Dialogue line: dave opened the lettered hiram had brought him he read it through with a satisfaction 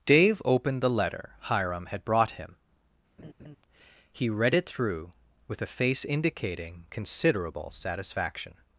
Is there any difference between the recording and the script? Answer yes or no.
yes